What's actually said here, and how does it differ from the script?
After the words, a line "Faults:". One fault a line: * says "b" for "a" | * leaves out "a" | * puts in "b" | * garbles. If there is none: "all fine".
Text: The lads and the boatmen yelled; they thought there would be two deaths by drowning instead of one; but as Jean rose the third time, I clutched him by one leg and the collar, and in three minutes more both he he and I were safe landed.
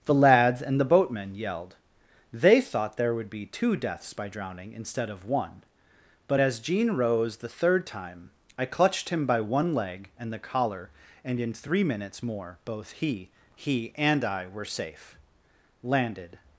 The lads and the boatmen yelled; they thought there would be two deaths by drowning instead of one; but as Jean rose the third time, I clutched him by one leg and the collar, and in three minutes more both he he and I were safe landed.
Faults:
all fine